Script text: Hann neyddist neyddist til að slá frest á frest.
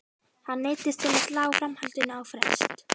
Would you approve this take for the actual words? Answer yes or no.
no